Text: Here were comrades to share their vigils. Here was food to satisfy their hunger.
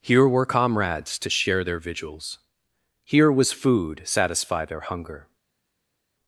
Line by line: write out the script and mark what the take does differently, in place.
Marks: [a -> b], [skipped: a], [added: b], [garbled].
Here were comrades to share their vigils. Here was food [skipped: to] satisfy their hunger.